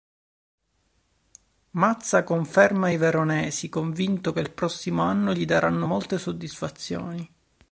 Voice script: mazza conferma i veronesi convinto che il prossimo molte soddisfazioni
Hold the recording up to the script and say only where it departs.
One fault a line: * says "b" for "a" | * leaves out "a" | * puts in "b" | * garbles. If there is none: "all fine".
* puts in "anno gli daranno"